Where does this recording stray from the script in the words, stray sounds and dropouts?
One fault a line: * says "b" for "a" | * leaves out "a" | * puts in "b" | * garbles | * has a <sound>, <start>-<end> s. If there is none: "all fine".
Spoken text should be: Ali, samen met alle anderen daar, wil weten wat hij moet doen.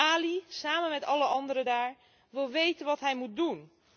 all fine